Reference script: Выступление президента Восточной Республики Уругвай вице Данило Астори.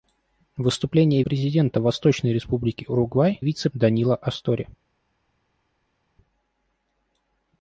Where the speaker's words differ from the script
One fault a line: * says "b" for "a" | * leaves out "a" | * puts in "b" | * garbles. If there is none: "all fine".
all fine